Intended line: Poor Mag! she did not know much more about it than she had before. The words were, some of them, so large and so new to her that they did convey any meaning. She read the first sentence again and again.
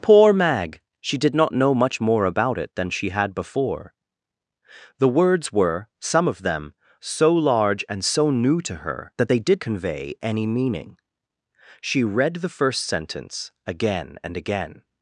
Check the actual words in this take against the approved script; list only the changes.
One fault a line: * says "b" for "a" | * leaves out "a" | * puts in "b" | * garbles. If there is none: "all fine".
all fine